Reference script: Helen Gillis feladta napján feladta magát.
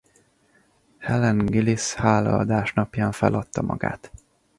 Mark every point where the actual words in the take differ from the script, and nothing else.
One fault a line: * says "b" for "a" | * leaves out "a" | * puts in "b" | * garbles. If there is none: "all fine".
* says "hálaadás" for "feladta"